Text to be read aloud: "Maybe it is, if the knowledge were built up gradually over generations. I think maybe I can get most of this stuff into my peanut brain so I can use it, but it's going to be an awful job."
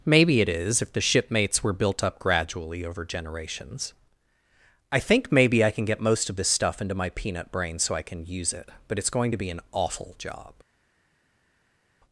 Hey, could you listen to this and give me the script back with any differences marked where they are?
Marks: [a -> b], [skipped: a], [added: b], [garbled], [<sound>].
"Maybe it is, if the [knowledge -> shipmates] were built up gradually over generations. I think maybe I can get most of this stuff into my peanut brain so I can use it, but it's going to be an awful job."